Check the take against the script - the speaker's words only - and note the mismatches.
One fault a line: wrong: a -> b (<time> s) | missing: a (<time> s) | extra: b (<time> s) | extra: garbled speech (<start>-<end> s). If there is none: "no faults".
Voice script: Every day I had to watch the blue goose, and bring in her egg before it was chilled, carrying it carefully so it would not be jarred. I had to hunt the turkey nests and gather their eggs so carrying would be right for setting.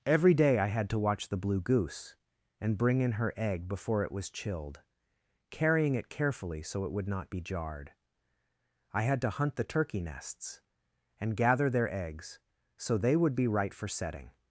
wrong: carrying -> they (13.0 s)